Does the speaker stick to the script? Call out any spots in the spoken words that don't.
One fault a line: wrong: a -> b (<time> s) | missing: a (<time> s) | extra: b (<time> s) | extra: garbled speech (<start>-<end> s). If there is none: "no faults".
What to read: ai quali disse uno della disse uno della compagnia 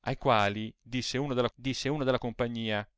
no faults